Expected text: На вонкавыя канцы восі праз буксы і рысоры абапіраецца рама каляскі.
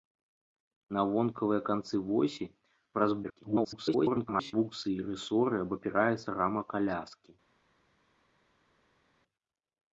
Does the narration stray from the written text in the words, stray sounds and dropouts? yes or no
yes